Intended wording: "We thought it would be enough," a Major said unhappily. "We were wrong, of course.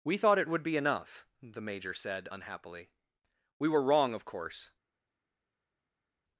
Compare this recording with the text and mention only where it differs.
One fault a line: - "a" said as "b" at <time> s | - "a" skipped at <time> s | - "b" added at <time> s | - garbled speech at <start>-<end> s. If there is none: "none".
- "a" said as "the" at 1.4 s